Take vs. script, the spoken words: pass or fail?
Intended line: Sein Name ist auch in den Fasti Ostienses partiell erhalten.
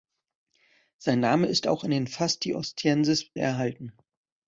fail